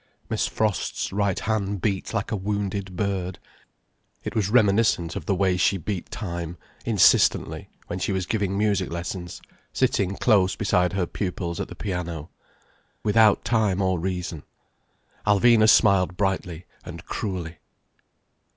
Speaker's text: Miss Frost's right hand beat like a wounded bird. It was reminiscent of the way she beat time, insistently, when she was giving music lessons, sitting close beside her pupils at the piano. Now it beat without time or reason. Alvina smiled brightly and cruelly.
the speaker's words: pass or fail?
fail